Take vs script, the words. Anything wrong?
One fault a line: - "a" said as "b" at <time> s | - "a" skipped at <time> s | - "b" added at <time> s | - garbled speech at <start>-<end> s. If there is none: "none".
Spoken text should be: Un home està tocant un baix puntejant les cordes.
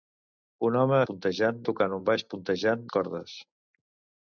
- "està" said as "puntejant" at 1.1 s
- "les" skipped at 2.9 s